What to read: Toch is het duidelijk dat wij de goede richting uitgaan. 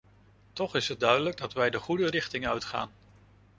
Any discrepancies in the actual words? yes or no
no